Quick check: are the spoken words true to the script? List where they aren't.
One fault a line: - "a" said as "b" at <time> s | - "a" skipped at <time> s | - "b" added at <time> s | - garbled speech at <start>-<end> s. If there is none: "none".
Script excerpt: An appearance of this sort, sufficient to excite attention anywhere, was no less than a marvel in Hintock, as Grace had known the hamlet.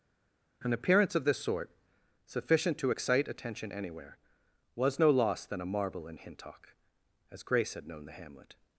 - "less" said as "loss" at 5.1 s